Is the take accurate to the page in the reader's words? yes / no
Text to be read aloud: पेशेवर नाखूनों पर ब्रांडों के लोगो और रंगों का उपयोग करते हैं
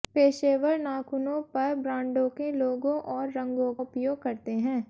no